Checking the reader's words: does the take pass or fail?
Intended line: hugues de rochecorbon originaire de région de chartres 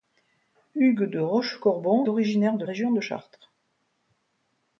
pass